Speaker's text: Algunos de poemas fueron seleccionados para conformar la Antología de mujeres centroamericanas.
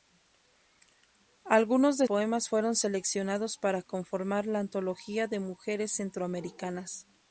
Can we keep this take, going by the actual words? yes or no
yes